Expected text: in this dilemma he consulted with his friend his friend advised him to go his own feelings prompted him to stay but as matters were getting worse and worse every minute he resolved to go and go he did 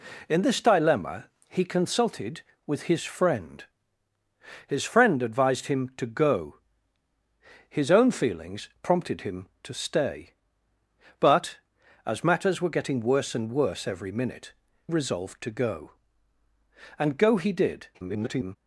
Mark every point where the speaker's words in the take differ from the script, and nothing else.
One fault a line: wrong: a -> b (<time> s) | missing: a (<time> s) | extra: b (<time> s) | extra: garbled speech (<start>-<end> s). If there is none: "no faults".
missing: he (14.5 s)
extra: garbled speech (17.9-18.6 s)